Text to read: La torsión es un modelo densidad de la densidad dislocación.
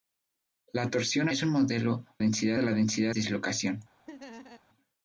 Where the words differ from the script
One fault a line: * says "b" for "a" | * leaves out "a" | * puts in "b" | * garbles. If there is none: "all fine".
all fine